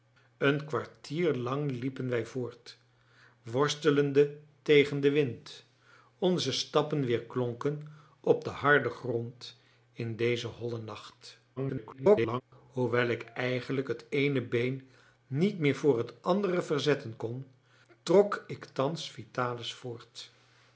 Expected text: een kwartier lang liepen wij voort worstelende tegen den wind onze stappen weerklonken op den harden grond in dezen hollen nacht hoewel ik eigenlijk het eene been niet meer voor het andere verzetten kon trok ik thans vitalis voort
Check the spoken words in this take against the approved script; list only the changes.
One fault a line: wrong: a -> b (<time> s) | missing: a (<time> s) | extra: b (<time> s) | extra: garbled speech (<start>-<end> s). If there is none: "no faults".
extra: garbled speech (11.6-12.4 s)